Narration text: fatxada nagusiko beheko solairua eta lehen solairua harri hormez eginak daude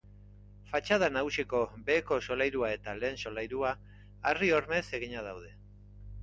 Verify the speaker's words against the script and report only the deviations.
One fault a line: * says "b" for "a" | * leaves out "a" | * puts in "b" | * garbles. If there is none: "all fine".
all fine